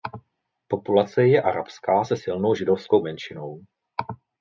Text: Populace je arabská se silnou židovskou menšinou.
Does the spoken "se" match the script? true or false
true